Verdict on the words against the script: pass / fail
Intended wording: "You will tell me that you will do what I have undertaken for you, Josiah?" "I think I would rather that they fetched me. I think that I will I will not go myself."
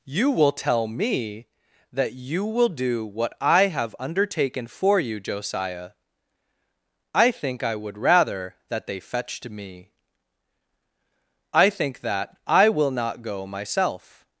fail